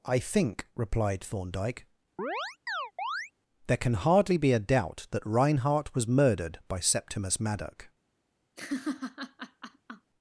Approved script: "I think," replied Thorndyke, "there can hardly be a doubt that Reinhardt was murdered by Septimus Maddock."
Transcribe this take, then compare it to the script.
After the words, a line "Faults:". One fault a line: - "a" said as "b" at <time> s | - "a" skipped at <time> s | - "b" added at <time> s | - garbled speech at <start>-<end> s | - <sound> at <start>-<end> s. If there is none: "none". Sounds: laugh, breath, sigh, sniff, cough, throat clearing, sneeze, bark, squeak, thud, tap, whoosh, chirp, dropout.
"I think," replied Thorndyke, "there can hardly be a doubt that Reinhardt was murdered by Septimus Maddock."
Faults:
- chirp at 2.2-3.3 s
- laugh at 8.6-10.1 s